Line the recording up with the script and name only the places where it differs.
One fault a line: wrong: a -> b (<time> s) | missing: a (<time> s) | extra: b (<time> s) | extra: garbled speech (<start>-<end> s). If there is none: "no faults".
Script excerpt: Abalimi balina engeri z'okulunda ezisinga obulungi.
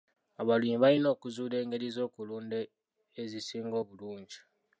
extra: okuzuula (1.1 s)